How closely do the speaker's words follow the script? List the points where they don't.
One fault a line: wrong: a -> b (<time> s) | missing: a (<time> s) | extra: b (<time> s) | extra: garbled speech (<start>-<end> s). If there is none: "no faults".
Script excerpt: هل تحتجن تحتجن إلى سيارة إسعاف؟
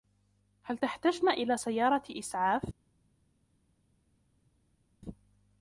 missing: تحتجن (1.3 s)